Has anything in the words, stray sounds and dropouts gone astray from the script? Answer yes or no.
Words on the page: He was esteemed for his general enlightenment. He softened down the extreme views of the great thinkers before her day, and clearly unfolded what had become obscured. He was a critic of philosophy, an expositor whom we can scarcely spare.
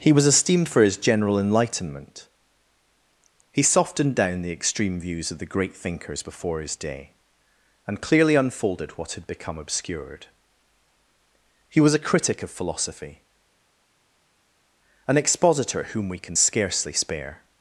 yes